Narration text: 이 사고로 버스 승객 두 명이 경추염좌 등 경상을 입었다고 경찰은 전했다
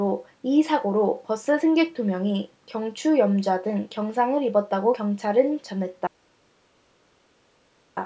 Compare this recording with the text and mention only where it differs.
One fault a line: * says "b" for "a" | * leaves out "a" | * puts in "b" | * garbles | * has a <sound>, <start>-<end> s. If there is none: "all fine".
all fine